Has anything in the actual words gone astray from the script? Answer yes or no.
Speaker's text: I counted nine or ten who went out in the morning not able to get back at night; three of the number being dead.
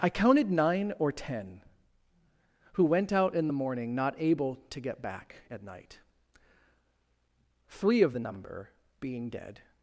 no